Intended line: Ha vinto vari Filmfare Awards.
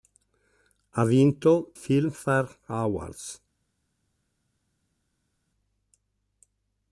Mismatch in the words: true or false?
true